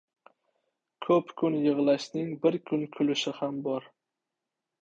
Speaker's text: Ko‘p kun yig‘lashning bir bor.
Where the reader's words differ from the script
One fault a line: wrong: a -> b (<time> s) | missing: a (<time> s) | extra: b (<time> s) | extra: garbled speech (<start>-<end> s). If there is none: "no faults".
extra: kun kulishi ham (2.7 s)